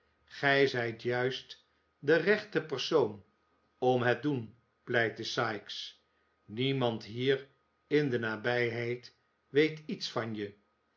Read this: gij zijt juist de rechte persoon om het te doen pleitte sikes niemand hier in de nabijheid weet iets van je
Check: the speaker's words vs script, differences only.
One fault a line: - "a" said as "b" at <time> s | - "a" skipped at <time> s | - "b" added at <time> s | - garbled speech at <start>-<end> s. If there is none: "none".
- "te" skipped at 4.2 s